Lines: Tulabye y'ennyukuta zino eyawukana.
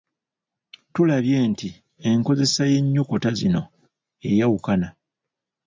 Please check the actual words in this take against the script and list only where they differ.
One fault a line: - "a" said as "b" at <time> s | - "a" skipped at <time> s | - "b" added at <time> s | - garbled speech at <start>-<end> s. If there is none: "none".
- "nti enkozesa" added at 1.5 s